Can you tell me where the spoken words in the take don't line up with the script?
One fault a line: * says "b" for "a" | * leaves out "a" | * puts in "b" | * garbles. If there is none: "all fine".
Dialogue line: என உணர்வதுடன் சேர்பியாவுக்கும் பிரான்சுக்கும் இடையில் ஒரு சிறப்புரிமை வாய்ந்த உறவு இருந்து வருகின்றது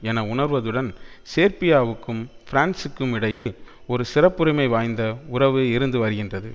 all fine